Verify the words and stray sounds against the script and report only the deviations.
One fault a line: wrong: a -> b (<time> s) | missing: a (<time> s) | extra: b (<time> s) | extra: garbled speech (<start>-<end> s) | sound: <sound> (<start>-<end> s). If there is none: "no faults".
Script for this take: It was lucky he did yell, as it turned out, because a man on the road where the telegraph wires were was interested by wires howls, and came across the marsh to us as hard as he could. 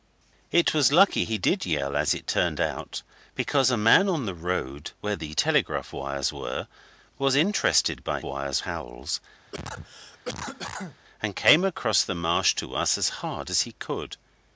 sound: cough (9.5-11.0 s)